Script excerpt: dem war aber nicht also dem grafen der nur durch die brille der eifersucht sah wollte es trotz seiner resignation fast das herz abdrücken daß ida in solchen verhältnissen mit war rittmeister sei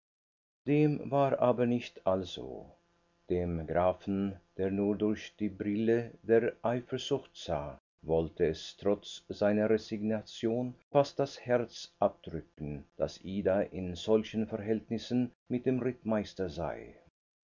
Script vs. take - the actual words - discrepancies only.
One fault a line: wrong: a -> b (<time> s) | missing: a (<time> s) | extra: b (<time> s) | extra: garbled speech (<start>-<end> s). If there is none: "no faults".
wrong: war -> dem (15.7 s)